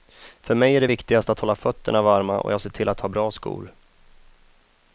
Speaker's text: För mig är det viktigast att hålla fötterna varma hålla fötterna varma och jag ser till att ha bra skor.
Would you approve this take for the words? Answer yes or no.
no